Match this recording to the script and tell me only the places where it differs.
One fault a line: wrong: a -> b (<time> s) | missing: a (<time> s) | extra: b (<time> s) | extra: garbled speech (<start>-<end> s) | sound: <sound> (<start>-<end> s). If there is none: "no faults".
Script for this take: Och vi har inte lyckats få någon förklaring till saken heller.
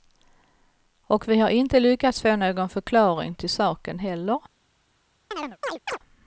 sound: chirp (5.3-6.0 s)